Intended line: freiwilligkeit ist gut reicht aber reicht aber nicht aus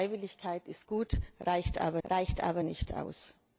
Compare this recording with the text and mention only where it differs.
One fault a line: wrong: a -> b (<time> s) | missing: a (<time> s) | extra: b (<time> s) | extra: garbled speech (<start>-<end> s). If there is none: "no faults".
no faults